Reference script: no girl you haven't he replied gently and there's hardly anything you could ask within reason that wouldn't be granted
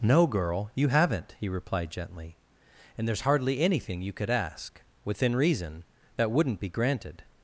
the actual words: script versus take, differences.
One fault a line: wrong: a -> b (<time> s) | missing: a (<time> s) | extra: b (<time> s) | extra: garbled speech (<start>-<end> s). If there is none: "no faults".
no faults